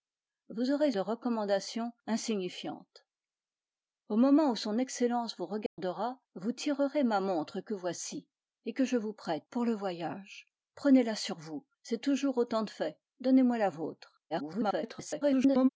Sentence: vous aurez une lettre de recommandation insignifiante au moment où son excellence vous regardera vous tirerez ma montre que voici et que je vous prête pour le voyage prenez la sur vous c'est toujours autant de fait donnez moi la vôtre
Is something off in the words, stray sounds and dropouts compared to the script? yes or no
yes